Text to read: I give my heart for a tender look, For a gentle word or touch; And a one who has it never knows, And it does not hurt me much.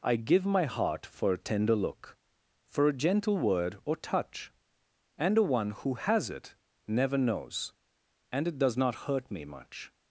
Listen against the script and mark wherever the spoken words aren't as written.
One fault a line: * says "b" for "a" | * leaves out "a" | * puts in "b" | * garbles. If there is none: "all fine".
all fine